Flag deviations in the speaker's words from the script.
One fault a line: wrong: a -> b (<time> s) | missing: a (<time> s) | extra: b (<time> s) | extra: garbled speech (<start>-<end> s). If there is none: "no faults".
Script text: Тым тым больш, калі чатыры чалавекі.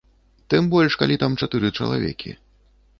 missing: тым (0.7 s)
extra: там (1.2 s)